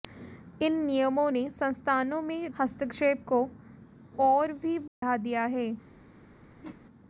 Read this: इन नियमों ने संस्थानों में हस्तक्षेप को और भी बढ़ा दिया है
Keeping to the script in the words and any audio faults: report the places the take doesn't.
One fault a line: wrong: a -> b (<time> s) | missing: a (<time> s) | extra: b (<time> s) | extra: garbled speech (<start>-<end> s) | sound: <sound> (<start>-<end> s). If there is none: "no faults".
sound: dropout (4.9-5.0 s)
sound: whoosh (6.6-6.8 s)